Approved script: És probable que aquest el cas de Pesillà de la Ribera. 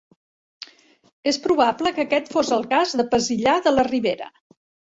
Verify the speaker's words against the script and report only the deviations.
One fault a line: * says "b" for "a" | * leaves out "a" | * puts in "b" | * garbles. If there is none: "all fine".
* puts in "fos"